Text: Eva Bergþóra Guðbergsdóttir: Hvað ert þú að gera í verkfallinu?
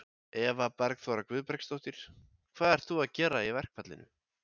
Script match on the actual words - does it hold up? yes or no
yes